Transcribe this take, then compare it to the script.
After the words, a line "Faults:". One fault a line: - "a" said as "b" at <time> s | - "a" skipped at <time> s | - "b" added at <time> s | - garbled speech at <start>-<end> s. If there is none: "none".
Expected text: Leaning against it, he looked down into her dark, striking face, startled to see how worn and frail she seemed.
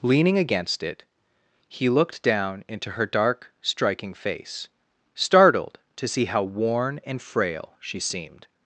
Leaning against it, he looked down into her dark, striking face, startled to see how worn and frail she seemed.
Faults:
none